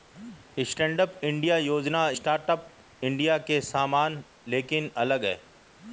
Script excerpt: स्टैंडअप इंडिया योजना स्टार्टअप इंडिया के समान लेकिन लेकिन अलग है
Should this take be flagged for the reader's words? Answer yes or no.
yes